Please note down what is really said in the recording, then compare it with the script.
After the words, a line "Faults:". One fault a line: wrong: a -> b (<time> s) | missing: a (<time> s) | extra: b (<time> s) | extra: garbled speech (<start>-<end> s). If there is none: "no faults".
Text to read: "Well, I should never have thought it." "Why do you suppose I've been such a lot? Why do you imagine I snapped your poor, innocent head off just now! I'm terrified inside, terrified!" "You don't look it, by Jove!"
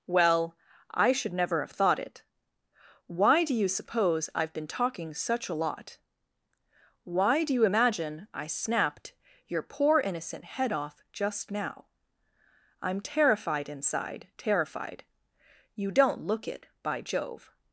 "Well, I should never have thought it." "Why do you suppose I've been talking such a lot? Why do you imagine I snapped your poor, innocent head off just now! I'm terrified inside, terrified!" "You don't look it, by Jove!"
Faults:
extra: talking (4.7 s)